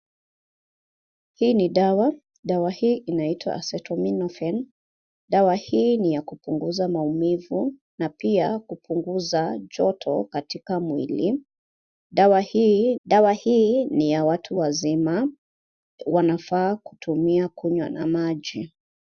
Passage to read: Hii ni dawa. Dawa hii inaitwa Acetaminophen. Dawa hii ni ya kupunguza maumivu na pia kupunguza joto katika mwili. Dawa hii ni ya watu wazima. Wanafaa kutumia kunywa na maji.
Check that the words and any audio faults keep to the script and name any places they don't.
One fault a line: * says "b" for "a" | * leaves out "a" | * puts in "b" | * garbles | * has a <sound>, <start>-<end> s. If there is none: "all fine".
* puts in "dawa hii"